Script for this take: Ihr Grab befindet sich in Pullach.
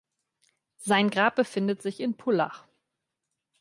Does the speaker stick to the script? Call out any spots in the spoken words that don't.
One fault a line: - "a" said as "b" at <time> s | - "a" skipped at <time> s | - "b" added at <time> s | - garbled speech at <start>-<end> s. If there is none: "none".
- "Ihr" said as "Sein" at 0.8 s